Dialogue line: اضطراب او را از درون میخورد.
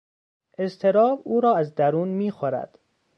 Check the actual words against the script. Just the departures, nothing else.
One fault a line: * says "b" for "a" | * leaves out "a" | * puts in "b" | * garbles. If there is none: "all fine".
all fine